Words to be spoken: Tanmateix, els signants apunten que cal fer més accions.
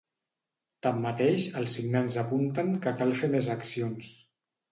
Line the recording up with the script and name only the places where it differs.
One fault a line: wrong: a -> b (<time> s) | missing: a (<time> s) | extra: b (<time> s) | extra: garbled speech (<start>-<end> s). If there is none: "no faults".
no faults